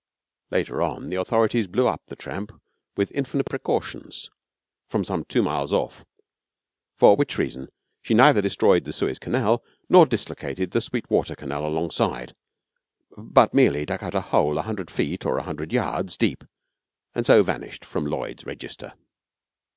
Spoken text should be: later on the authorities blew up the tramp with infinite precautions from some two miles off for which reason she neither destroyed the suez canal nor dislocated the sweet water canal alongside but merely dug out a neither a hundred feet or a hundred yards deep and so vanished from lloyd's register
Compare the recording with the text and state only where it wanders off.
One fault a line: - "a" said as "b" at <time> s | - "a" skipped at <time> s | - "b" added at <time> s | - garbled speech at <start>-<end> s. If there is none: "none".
- "neither" said as "hole" at 14.2 s